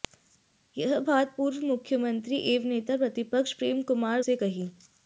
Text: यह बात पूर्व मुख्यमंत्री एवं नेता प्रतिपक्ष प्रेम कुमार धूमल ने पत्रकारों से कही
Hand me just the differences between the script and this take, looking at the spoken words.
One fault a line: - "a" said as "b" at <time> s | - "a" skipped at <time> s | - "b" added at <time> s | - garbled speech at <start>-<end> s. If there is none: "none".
- "धूमल ने पत्रकारों" skipped at 4.2 s